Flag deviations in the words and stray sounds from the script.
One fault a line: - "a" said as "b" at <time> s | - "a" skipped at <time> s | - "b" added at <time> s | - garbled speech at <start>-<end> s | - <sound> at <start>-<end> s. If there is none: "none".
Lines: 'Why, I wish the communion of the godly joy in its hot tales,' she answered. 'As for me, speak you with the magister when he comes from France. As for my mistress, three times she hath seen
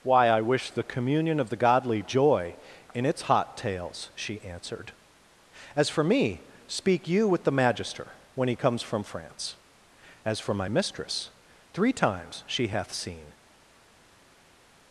none